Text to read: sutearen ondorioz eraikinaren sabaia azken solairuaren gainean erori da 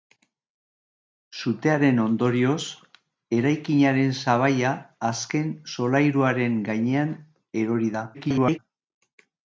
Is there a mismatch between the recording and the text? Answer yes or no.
yes